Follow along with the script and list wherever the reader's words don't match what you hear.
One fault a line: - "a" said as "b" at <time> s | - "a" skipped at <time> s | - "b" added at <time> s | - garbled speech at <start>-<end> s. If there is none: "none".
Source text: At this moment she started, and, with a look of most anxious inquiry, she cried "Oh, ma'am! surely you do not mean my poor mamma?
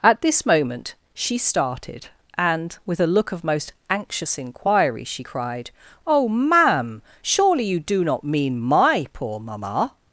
none